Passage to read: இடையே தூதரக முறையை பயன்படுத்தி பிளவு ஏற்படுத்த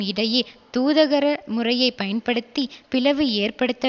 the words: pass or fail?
pass